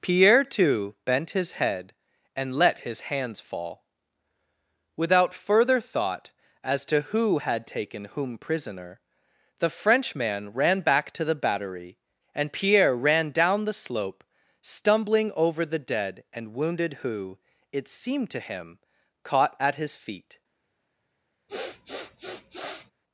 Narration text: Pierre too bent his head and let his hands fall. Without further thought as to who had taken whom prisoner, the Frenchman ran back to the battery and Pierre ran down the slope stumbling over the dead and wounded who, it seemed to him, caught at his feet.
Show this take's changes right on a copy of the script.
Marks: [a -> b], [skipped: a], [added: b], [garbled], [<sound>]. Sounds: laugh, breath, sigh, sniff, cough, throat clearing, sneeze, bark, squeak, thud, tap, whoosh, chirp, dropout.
Pierre too bent his head and let his hands fall. Without further thought as to who had taken whom prisoner, the Frenchman ran back to the battery and Pierre ran down the slope stumbling over the dead and wounded who, it seemed to him, caught at his feet. [sniff]